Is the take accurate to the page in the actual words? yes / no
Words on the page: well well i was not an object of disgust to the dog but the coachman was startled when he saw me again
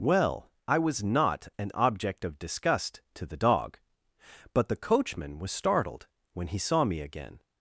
no